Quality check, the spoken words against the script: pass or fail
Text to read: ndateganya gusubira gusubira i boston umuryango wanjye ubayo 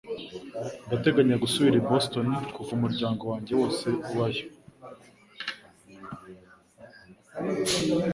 fail